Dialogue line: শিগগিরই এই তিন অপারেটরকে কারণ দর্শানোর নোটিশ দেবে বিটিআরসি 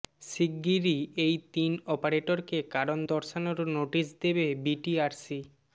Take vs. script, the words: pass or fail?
pass